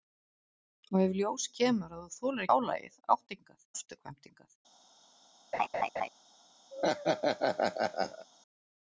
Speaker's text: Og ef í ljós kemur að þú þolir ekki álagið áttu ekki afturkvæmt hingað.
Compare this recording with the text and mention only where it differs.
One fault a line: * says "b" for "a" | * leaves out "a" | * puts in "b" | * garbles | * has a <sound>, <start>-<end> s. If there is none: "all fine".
* leaves out "ekki"
* says "hingað" for "ekki"
* has a laugh, 5.5-6.1 s
* has a laugh, 6.7-8.3 s